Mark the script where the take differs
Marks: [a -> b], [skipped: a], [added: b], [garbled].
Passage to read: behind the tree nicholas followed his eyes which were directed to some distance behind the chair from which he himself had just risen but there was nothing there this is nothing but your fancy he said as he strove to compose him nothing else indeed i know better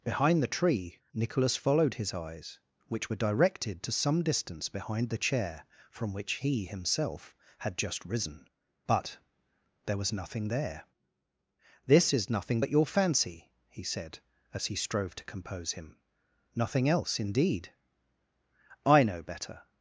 behind the tree nicholas followed his eyes which were directed to some distance behind the chair from which he himself had just risen but there was nothing there this is nothing but your fancy he said as he strove to compose him nothing else indeed i know better